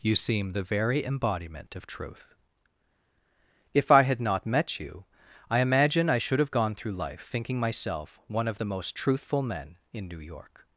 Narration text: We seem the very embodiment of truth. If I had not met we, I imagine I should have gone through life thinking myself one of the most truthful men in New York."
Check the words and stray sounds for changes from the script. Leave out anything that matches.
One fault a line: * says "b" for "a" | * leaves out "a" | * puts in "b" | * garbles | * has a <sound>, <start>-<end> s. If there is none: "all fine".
* says "You" for "We"
* says "you" for "we"